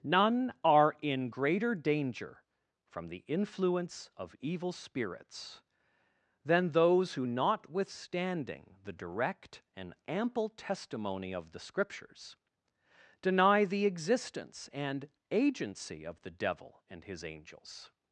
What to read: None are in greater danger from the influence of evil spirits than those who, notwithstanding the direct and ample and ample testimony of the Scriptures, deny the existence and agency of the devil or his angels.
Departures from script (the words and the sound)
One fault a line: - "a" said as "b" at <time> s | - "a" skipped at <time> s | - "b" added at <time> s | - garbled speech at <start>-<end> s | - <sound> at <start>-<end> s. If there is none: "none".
- "and ample" skipped at 10.5 s
- "or" said as "and" at 16.9 s